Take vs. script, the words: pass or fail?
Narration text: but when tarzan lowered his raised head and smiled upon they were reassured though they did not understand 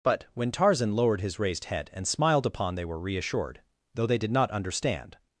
pass